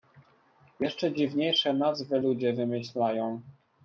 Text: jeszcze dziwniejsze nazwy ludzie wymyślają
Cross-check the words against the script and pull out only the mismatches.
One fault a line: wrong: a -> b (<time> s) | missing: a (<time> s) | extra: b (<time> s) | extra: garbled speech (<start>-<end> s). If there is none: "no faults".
no faults